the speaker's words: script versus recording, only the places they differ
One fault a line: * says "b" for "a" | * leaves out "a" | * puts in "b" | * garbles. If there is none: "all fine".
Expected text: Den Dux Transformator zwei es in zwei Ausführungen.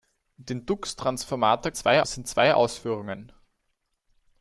all fine